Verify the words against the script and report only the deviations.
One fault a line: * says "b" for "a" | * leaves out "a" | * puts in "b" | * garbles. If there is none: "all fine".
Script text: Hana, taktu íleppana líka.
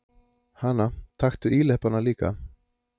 all fine